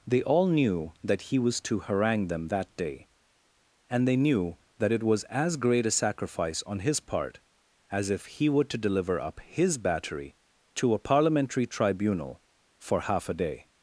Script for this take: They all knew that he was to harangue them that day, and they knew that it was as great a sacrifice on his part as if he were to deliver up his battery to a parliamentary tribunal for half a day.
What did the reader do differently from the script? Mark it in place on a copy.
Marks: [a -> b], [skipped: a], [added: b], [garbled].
They all knew that he was to harangue them that day, and they knew that it was as great a sacrifice on his part as if he were to deliver up his battery to a parliamentary tribunal for half a day.